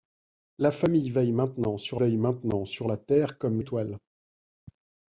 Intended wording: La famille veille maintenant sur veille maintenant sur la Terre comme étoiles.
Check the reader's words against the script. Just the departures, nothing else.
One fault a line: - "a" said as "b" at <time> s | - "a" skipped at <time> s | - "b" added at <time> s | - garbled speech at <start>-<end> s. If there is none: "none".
none